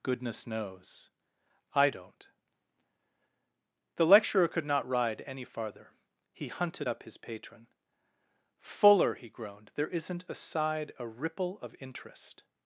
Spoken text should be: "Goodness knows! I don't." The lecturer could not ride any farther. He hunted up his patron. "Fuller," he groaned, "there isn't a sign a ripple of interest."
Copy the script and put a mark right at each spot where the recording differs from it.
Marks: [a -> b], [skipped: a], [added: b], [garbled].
"Goodness knows! I don't." The lecturer could not ride any farther. He hunted up his patron. "Fuller," he groaned, "there isn't a [sign -> side] a ripple of interest."